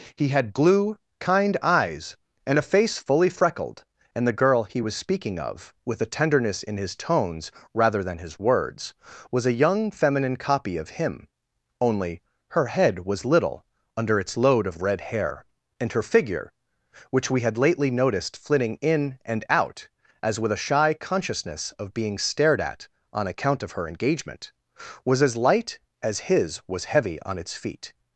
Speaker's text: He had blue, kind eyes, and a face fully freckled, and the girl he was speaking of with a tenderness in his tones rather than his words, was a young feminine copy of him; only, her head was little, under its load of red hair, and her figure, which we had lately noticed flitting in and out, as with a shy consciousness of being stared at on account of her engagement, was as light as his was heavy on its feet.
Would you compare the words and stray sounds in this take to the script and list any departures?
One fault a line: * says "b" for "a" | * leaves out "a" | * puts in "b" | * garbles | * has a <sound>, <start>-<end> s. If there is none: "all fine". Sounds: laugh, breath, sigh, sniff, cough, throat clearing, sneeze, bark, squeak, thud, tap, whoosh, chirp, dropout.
all fine